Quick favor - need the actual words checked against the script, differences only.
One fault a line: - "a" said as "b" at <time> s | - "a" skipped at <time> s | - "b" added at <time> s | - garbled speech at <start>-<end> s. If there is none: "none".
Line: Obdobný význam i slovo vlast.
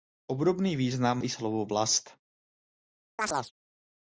none